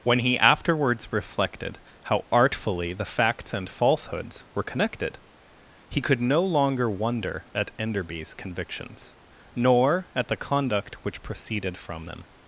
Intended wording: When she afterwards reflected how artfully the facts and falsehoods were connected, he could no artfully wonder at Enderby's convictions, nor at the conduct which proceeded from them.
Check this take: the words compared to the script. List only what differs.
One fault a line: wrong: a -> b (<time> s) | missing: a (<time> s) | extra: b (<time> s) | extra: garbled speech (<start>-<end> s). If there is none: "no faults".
wrong: she -> he (0.2 s)
wrong: artfully -> longer (6.4 s)